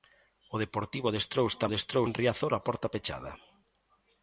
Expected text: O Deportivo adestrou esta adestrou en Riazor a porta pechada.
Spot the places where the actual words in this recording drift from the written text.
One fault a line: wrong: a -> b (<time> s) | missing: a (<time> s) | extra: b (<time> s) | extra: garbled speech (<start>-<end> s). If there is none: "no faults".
no faults